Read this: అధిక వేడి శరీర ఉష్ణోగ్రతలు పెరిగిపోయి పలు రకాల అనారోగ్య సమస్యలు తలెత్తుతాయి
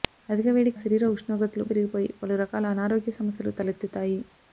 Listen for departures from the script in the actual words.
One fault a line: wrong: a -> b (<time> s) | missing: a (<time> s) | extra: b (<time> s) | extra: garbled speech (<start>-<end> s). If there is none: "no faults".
no faults